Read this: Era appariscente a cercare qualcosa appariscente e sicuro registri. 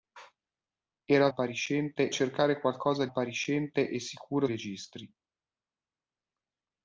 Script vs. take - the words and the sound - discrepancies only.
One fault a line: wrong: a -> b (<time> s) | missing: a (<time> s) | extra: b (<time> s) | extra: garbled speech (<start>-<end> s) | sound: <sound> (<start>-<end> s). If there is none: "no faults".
no faults